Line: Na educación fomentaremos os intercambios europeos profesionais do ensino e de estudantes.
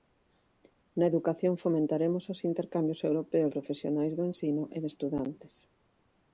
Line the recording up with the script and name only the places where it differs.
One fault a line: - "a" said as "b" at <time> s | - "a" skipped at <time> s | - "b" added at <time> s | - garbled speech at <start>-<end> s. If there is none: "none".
none